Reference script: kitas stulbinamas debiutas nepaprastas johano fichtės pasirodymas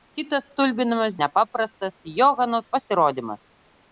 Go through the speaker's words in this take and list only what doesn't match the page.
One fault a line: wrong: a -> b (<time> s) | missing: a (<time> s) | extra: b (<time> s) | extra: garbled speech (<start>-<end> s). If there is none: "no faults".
missing: debiutas (1.2 s)
missing: fichtės (2.6 s)